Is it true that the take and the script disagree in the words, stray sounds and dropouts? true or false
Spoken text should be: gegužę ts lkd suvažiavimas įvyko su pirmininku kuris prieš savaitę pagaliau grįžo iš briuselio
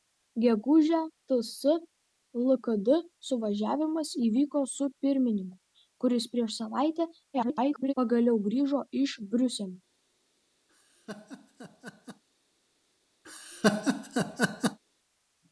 true